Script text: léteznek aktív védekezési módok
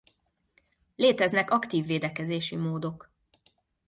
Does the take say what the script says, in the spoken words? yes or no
yes